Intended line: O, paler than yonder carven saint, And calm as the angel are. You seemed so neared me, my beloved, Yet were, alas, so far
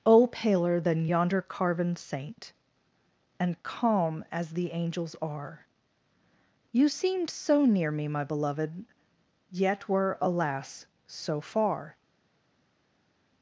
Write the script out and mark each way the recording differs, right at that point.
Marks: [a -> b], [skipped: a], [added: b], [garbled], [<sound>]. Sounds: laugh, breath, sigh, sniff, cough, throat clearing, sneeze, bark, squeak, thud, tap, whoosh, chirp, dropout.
O, paler than yonder carven saint, And calm as the [angel -> angels] are. You seemed so [neared -> near] me, my beloved, Yet were, alas, so far